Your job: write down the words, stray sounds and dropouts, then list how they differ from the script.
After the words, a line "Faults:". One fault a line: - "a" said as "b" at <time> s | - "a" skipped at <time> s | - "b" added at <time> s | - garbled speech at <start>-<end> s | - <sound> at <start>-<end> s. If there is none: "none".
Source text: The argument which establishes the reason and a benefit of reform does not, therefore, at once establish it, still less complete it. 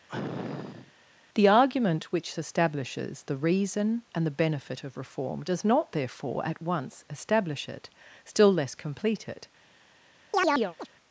The argument which establishes the reason and the benefit of reform does not, therefore, at once establish it, still less complete it.
Faults:
- sniff at 0.1-0.9 s
- "a" said as "the" at 4.3 s
- chirp at 10.3-10.9 s